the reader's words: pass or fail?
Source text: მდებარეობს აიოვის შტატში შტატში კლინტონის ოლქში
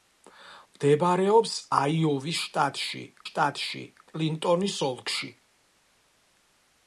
pass